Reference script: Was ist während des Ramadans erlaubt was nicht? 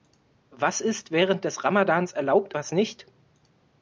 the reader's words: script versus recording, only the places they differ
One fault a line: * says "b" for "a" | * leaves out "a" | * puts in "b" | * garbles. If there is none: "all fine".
all fine